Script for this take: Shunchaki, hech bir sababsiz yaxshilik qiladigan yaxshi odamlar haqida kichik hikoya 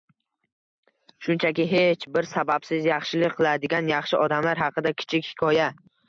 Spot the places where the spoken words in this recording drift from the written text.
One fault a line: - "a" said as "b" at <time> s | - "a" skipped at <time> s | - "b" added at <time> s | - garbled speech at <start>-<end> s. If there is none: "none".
none